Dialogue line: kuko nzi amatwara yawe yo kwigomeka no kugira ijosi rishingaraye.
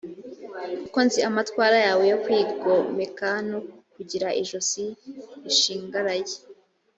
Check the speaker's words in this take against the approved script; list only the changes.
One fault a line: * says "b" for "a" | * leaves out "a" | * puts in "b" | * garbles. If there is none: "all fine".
all fine